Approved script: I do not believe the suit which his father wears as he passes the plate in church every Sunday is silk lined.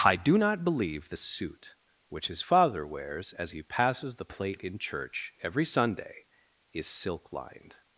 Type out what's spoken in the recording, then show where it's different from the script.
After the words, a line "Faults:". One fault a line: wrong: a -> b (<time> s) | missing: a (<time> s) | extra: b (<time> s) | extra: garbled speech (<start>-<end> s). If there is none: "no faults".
I do not believe the suit which his father wears as he passes the plate in church every Sunday is silk lined.
Faults:
no faults